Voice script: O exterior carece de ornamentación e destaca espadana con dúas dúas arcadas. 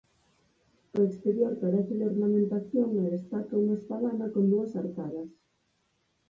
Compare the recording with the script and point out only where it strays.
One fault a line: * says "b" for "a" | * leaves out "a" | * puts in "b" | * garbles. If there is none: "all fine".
* puts in "unha"
* leaves out "dúas"